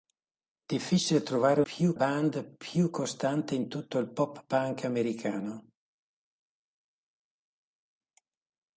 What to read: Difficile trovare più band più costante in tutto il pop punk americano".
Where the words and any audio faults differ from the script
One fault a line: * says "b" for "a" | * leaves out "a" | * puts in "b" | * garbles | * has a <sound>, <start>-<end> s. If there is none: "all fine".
all fine